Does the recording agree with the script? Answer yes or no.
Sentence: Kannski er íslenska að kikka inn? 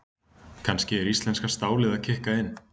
no